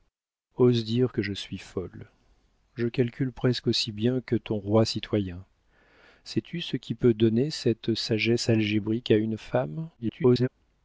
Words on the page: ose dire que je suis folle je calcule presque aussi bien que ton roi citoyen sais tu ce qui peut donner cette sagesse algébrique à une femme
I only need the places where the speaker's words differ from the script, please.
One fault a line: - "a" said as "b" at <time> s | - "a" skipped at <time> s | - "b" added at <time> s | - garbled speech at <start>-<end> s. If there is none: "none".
- garbled speech at 10.0-10.5 s